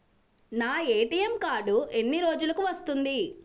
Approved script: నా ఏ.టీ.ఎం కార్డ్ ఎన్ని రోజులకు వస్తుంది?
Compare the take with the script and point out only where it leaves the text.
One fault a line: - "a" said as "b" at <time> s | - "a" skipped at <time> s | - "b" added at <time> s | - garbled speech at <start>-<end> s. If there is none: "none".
none